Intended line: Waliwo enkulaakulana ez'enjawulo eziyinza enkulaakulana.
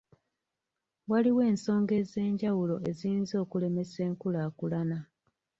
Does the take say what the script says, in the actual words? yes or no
no